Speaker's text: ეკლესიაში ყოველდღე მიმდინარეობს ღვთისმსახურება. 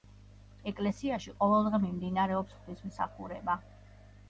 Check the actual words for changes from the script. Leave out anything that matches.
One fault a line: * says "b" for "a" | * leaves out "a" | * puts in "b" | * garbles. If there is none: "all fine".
all fine